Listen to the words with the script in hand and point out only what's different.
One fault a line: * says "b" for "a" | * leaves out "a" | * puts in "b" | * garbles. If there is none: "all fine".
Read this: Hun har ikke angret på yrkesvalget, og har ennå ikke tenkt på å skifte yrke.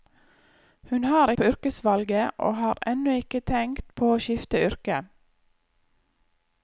* leaves out "ikke angret"